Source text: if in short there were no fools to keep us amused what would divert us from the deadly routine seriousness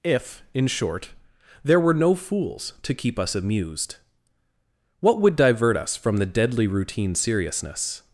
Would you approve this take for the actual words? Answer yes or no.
yes